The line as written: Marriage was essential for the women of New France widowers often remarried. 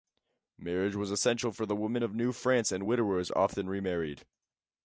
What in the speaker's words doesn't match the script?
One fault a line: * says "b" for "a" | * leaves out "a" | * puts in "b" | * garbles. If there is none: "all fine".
* puts in "and"